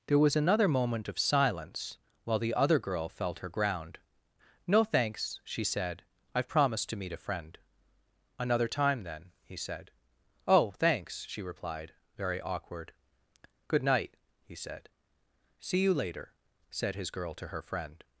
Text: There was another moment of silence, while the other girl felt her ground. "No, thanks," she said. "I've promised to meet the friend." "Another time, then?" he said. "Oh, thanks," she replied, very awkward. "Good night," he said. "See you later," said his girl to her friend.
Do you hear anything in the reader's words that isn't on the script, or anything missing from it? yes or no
yes